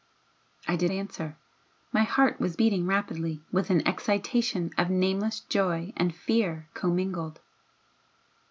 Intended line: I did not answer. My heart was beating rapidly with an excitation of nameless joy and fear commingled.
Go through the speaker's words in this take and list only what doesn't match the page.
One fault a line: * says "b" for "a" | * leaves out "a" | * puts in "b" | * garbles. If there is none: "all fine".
* leaves out "not"